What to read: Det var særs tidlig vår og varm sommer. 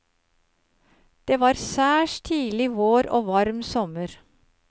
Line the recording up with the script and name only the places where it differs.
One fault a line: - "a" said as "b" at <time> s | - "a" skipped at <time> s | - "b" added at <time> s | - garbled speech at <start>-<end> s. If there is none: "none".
none